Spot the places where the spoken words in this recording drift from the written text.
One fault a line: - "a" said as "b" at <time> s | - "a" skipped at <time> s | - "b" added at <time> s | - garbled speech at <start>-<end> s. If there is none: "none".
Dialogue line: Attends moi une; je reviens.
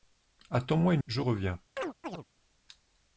none